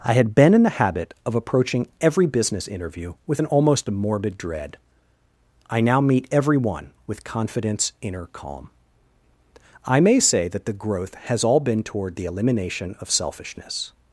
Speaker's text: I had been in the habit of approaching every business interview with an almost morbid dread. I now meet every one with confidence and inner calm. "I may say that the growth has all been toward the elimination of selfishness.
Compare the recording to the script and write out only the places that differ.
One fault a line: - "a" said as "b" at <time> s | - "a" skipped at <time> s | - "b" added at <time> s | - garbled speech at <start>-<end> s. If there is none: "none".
- "and" skipped at 7.9 s